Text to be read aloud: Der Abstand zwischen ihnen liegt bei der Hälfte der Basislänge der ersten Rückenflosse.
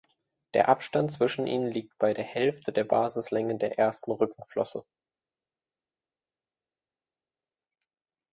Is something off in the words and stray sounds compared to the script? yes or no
no